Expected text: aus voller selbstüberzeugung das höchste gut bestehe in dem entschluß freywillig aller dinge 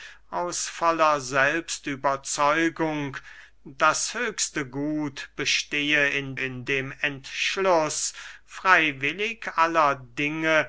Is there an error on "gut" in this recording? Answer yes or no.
no